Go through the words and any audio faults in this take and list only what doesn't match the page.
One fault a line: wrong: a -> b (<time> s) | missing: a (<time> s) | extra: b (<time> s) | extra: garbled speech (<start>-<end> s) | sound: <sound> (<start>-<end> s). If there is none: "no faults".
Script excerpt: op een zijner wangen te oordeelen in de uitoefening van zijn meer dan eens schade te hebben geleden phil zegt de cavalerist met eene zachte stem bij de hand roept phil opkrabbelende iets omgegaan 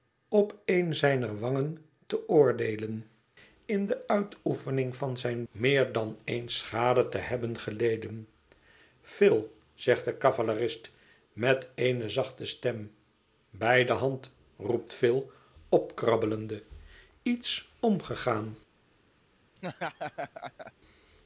sound: laugh (19.6-20.7 s)